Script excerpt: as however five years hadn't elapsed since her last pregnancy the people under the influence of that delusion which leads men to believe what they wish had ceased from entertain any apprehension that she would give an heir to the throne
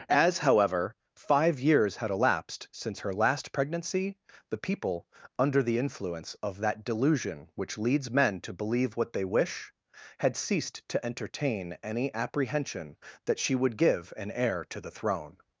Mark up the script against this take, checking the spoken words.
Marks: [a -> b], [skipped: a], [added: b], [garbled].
as however five years [hadn't -> had] elapsed since her last pregnancy the people under the influence of that delusion which leads men to believe what they wish had ceased [from -> to] entertain any apprehension that she would give an heir to the throne